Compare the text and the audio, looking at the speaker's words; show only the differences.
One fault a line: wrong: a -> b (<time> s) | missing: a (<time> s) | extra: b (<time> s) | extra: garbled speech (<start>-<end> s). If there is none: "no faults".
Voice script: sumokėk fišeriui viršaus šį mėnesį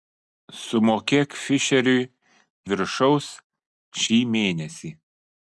no faults